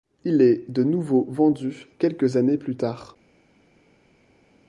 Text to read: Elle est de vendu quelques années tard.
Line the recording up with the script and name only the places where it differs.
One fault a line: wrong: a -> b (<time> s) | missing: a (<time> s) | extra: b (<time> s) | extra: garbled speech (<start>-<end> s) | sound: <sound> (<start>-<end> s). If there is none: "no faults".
wrong: Elle -> Il (0.2 s)
extra: nouveau (0.8 s)
extra: plus (2.6 s)